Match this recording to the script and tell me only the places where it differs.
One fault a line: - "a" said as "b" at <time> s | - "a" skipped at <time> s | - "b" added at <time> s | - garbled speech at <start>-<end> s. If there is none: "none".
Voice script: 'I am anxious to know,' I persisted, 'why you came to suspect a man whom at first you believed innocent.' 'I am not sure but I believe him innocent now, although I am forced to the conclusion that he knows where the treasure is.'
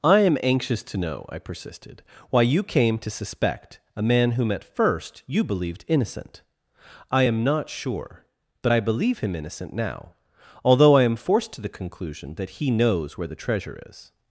none